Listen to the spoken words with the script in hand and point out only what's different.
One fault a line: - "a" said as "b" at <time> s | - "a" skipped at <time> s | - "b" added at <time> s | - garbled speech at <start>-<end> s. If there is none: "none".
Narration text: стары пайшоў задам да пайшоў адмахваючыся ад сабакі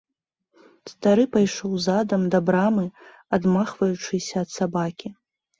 - "пайшоў" said as "брамы" at 2.5 s